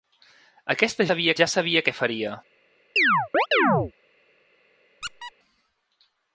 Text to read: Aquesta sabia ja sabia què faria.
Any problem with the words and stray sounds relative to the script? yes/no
yes